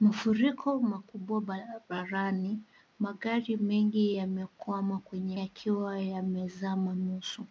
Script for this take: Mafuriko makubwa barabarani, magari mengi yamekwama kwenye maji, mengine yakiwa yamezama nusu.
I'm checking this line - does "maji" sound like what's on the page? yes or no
no